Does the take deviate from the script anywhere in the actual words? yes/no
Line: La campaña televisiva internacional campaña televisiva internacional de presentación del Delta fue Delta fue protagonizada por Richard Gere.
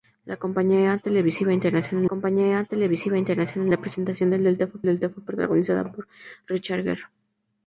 no